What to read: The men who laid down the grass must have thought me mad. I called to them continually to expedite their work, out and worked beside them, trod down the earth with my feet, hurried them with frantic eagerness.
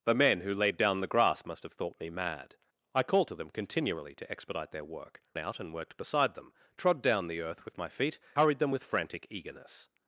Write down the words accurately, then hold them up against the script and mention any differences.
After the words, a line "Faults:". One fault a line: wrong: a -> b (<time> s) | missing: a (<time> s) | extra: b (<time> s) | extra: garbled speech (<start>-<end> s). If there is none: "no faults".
The men who laid down the grass must have thought me mad. I called to them continually to expedite their work, out and worked beside them, trod down the earth with my feet, hurried them with frantic eagerness.
Faults:
no faults